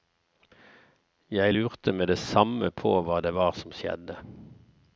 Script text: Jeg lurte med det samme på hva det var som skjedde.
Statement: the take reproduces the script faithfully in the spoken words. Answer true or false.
true